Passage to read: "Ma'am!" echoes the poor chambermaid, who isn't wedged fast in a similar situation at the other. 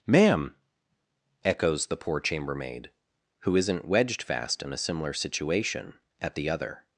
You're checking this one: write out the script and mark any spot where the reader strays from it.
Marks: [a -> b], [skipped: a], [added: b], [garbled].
"Ma'am!" echoes the poor chambermaid, who isn't wedged fast in a similar situation at the other.